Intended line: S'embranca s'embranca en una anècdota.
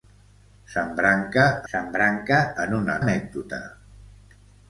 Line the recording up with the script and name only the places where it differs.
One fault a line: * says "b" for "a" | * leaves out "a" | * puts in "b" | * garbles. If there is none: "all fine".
all fine